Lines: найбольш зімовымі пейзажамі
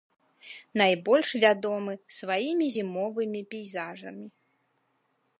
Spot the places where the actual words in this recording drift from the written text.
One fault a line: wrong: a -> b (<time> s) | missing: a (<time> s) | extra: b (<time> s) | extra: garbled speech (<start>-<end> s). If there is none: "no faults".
extra: вядомы сваімі (1.4 s)